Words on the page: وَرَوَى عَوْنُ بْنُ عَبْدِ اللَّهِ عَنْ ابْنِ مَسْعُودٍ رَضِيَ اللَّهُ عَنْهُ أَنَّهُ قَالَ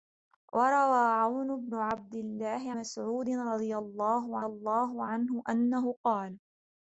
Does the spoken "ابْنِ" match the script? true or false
false